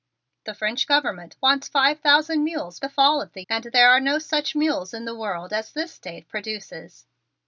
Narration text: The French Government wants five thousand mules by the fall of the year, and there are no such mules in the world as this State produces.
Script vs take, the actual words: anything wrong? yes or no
yes